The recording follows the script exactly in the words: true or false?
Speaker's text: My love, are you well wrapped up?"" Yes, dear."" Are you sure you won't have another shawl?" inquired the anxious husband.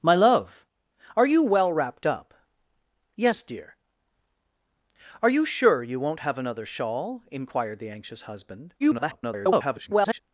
false